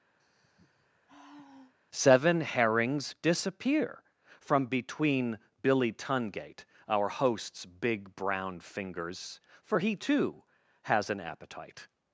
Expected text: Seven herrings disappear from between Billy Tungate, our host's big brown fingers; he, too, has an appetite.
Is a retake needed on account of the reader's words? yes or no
yes